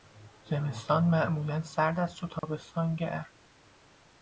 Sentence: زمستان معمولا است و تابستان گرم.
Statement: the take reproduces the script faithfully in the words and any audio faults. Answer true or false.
false